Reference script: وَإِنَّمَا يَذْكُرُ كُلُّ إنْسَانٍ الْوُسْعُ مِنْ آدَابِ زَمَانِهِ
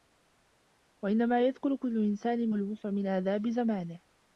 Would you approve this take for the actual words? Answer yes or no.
yes